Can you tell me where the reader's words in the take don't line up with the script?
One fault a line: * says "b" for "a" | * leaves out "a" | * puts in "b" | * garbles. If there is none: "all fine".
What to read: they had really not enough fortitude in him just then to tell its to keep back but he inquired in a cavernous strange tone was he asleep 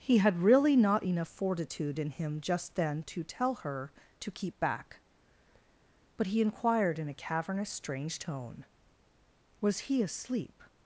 * says "he" for "they"
* says "her" for "its"